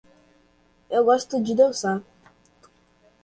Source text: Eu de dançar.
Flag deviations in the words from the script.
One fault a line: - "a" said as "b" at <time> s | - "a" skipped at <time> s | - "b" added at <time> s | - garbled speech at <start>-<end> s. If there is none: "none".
- "gosto" added at 1.1 s